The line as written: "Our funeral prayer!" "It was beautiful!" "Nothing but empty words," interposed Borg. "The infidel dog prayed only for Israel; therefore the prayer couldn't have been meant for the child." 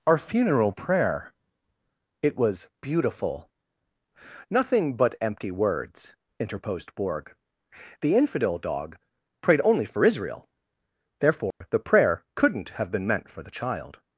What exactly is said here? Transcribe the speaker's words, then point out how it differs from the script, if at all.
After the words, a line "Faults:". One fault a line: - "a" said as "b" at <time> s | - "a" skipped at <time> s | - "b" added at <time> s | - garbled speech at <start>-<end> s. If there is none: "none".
"Our funeral prayer!" "It was beautiful!" "Nothing but empty words," interposed Borg. "The infidel dog prayed only for Israel; therefore the prayer couldn't have been meant for the child."
Faults:
none